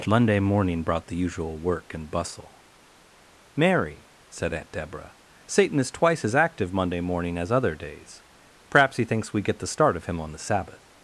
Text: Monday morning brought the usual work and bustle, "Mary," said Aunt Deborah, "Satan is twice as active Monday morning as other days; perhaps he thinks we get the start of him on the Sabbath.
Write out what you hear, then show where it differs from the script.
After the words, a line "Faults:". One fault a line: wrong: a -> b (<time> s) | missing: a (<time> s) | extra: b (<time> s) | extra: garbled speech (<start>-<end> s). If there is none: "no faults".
Monday morning brought the usual work and bustle, "Mary," said Aunt Deborah, "Satan is twice as active Monday morning as other days; perhaps he thinks we get the start of him on the Sabbath.
Faults:
no faults